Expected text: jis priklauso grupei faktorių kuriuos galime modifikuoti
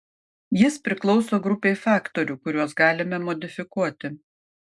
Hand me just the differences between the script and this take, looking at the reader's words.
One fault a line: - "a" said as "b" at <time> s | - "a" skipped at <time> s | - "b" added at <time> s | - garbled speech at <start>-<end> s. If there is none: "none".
none